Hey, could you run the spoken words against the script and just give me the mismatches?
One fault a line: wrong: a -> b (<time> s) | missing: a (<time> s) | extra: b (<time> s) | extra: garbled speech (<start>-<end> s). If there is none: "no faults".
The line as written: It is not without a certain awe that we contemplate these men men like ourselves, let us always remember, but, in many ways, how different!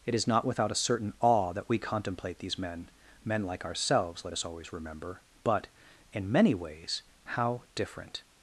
no faults